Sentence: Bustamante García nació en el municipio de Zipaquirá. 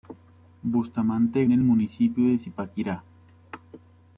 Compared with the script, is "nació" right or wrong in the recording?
wrong